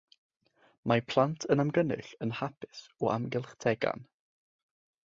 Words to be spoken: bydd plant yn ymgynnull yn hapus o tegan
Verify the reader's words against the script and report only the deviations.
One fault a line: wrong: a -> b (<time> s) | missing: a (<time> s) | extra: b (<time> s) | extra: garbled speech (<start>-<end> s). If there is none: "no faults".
wrong: bydd -> mae (0.9 s)
extra: amgylch (3.2 s)